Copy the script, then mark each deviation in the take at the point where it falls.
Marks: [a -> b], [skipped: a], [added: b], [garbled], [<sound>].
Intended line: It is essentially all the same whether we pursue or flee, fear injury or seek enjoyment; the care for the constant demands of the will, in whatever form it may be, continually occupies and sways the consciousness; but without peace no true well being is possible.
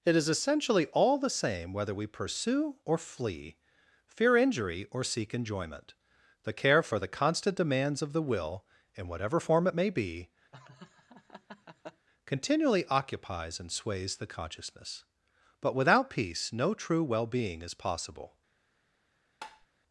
It is essentially all the same whether we pursue or flee, fear injury or seek enjoyment; the care for the constant demands of the will, in whatever form it may be, [laugh] continually occupies and sways the consciousness; but without peace no true well being is possible. [tap]